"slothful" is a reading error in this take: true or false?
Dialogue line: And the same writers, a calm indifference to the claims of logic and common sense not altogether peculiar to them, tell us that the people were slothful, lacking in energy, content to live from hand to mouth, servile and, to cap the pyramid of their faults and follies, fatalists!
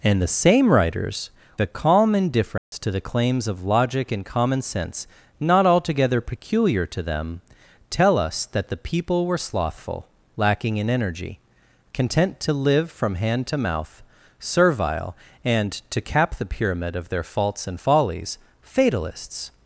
false